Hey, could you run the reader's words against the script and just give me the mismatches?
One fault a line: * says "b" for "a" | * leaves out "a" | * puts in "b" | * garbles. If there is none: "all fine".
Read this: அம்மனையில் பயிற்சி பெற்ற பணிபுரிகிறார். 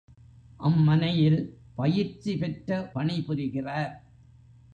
all fine